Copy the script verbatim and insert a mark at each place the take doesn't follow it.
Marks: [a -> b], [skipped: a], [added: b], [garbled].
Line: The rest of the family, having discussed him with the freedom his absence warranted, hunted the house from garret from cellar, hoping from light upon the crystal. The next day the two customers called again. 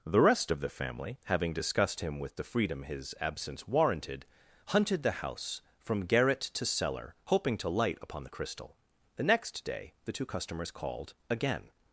The rest of the family, having discussed him with the freedom his absence warranted, hunted the house from garret [from -> to] cellar, hoping [from -> to] light upon the crystal. The next day the two customers called again.